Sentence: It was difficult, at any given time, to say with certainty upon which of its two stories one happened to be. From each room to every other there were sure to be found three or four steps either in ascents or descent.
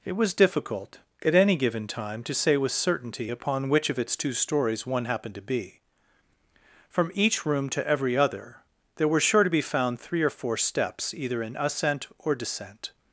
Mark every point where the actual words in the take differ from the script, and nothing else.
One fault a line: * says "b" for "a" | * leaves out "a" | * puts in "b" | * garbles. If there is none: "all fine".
* says "ascent" for "ascents"